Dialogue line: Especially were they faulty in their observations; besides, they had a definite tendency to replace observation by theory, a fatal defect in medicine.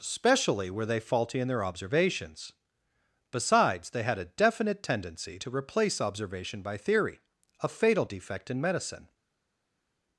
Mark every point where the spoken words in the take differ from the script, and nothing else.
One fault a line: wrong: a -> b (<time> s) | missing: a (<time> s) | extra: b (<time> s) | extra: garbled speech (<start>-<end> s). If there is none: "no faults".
no faults